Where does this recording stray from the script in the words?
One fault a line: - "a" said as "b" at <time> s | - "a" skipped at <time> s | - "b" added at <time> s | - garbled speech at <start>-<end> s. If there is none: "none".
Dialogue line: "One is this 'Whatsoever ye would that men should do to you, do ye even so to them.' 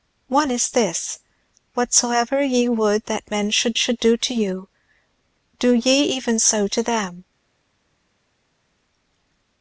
- "should" added at 3.7 s